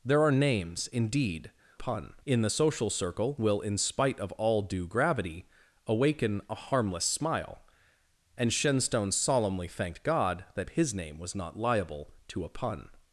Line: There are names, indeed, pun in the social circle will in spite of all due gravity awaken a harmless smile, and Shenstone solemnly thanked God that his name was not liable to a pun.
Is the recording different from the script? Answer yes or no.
no